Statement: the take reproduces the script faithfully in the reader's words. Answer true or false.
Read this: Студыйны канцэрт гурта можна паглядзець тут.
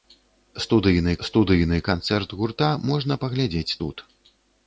false